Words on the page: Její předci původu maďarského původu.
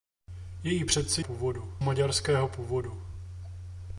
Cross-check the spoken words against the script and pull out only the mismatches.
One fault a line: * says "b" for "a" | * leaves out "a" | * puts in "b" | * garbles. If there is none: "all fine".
all fine